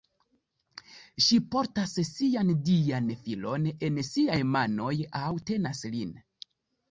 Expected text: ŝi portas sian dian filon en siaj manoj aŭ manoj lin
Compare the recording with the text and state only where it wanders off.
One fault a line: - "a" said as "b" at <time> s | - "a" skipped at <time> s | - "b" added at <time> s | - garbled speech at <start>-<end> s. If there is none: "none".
- "manoj" said as "tenas" at 5.5 s